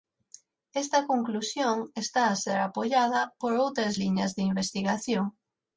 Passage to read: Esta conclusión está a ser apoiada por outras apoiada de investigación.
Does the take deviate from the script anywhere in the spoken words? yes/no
yes